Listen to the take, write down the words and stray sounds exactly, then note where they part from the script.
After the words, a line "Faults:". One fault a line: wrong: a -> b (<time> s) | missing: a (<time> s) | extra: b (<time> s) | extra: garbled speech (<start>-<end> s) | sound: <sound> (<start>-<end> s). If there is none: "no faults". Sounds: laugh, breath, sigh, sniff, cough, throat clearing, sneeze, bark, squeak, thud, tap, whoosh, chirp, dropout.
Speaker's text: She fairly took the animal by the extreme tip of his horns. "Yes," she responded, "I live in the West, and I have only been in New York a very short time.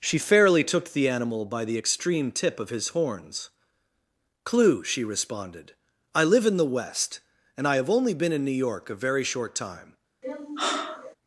She fairly took the animal by the extreme tip of his horns. "Clue," she responded, "I live in the West, and I have only been in New York a very short time.
Faults:
wrong: Yes -> Clue (4.4 s)
sound: sigh (10.2-11.2 s)